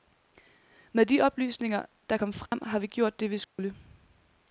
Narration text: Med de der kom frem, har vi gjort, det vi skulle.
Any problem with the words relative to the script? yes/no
yes